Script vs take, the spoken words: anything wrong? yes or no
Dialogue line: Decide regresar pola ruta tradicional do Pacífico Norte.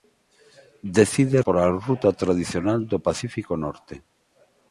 yes